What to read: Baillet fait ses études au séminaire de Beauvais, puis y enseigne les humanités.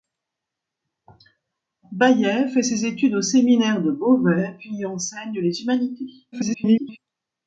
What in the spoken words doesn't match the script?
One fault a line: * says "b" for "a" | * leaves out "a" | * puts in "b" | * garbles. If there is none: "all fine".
* garbles